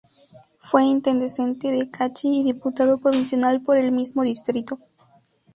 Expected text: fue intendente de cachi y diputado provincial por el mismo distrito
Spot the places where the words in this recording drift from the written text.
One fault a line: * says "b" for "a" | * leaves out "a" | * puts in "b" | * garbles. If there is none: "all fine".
all fine